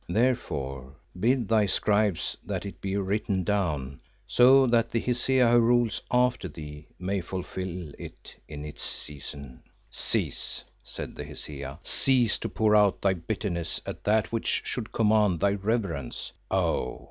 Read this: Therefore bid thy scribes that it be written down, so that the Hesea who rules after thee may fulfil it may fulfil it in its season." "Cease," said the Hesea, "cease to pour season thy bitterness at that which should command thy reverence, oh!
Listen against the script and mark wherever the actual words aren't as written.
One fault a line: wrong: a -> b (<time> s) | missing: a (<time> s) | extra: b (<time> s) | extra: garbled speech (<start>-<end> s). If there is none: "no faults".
missing: may fulfil it (8.3 s)
wrong: season -> out (12.8 s)